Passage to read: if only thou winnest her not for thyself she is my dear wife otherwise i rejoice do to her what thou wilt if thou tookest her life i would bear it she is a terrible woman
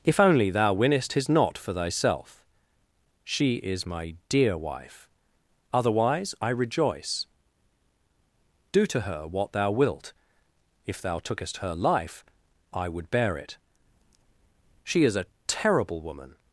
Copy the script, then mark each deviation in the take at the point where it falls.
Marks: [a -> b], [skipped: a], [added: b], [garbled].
if only thou winnest [her -> his] not for thyself she is my dear wife otherwise i rejoice do to her what thou wilt if thou tookest her life i would bear it she is a terrible woman